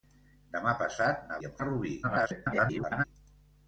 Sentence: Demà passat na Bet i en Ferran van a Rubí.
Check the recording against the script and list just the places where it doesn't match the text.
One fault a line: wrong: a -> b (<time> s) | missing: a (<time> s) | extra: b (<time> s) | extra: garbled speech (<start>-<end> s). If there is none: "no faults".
missing: Bet (1.4 s)
missing: Ferran van (1.6 s)
extra: garbled speech (2.0-3.0 s)